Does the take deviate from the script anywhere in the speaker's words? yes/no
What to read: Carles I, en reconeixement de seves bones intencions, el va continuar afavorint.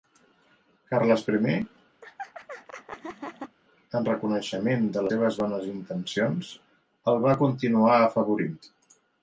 no